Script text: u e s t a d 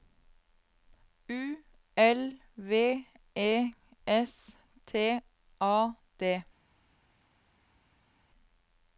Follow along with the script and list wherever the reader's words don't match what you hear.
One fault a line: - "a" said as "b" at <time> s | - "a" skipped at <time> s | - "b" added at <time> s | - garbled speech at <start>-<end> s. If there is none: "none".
- "l v" added at 2.0 s